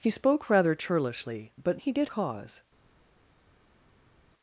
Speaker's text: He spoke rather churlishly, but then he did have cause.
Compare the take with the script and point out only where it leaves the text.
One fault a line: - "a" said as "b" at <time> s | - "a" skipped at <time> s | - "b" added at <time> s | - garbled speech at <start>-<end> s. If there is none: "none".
- "then" skipped at 1.8 s
- "have" skipped at 2.1 s